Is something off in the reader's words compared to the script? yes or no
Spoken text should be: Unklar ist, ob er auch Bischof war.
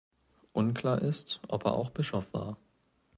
no